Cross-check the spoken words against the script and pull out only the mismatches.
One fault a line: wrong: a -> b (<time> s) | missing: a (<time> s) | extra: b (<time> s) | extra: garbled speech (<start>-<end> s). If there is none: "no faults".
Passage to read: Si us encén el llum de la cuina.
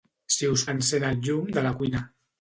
no faults